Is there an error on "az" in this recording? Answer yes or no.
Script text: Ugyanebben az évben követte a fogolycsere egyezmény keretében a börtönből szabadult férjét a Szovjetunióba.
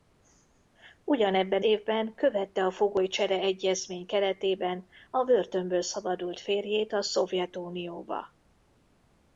yes